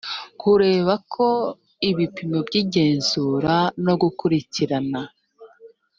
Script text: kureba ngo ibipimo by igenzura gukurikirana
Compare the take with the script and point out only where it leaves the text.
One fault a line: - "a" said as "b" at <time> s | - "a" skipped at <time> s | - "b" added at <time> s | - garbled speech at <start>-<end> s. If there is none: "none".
- "ngo" said as "ko" at 1.1 s
- "no" added at 3.8 s